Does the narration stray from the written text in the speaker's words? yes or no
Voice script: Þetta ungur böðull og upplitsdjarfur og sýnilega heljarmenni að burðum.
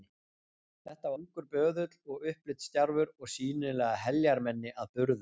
no